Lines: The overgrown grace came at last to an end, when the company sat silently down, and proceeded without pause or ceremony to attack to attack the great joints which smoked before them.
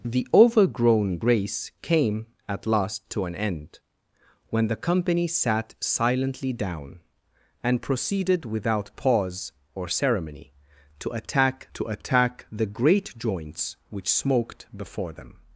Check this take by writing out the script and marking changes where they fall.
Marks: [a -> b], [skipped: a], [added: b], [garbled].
The overgrown grace came at last to an end, when the company sat silently down, and proceeded without pause or ceremony to attack to attack the great joints which smoked before them.